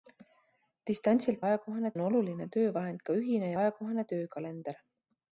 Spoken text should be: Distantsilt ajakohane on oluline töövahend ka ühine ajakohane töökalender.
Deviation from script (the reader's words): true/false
false